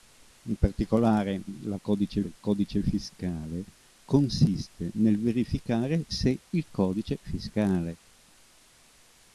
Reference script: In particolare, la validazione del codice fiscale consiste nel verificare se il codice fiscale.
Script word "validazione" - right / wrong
wrong